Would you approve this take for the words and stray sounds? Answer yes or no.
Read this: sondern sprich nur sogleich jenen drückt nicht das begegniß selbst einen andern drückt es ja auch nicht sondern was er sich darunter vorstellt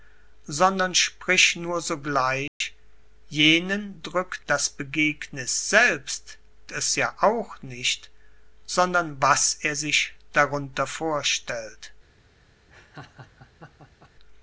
no